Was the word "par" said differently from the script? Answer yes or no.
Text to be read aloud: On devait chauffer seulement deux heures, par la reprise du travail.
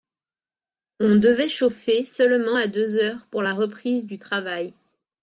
yes